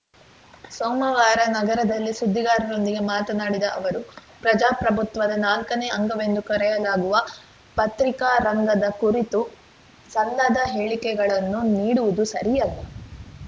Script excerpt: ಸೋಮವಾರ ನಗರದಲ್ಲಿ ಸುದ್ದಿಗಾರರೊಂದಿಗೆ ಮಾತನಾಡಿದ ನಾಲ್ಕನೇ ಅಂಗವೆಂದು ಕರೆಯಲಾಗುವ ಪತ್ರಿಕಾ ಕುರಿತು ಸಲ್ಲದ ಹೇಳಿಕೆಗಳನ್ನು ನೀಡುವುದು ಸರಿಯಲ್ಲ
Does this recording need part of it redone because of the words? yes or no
yes